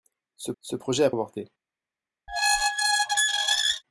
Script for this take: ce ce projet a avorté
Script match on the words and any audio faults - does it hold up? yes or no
no